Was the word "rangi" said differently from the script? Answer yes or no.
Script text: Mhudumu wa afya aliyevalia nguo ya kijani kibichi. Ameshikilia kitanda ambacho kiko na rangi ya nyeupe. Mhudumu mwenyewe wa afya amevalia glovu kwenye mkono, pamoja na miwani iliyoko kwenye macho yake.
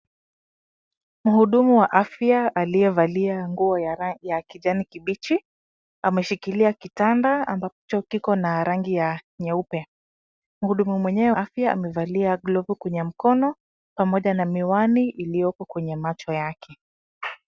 no